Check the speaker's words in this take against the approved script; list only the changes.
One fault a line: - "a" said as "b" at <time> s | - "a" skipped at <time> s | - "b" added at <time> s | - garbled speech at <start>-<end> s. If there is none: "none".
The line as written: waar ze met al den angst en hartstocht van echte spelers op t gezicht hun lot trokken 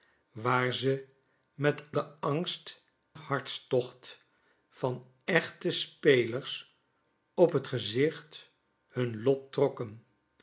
- "al" skipped at 1.8 s
- "en" skipped at 2.8 s